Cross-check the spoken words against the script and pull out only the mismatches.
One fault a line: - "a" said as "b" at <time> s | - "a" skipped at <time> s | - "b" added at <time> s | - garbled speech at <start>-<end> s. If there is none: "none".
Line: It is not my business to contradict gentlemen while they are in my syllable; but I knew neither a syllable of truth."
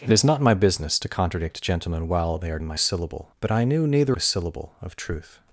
none